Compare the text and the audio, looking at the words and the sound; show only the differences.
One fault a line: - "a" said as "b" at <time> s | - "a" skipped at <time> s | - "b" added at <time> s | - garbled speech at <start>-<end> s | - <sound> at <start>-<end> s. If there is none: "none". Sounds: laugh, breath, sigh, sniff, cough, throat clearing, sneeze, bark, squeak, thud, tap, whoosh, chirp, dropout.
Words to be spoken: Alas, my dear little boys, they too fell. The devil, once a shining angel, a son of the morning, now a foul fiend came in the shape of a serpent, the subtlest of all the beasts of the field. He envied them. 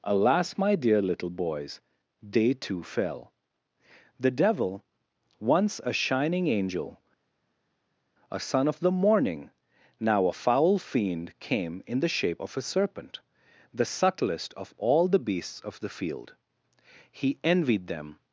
none